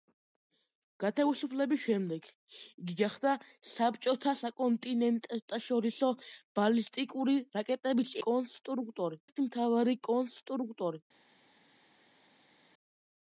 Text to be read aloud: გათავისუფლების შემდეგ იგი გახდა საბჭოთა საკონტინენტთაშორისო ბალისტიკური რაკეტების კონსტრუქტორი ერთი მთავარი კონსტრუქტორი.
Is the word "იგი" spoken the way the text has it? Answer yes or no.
yes